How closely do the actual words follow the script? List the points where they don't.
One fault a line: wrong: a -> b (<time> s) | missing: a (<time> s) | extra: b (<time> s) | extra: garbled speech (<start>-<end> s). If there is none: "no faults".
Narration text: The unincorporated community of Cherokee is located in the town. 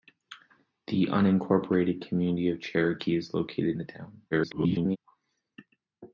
missing: in (3.8 s)
extra: garbled speech (4.3-5.0 s)